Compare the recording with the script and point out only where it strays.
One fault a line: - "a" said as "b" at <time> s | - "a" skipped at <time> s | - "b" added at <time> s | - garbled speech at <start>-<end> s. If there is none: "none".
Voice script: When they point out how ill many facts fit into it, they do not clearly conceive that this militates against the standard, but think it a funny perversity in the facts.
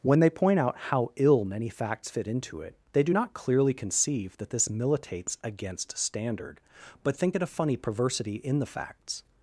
- "the" skipped at 6.0 s